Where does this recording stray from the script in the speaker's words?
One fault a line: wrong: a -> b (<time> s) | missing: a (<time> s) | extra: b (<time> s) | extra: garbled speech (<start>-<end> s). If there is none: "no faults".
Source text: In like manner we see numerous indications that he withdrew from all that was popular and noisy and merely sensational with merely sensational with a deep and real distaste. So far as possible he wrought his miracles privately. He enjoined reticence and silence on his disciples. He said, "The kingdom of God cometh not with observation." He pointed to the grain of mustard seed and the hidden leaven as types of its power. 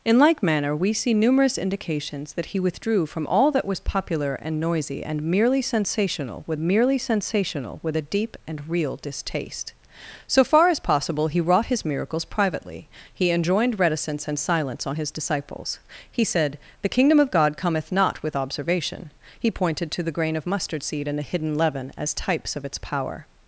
no faults